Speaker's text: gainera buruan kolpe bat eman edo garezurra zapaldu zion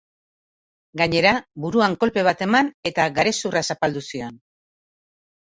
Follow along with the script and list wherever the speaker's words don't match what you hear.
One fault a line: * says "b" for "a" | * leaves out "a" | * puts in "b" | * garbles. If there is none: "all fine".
* says "eta" for "edo"